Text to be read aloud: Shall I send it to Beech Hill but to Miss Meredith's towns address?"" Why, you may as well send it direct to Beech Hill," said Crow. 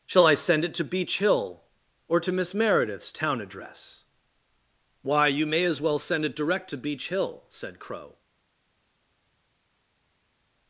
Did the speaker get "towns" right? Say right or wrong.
wrong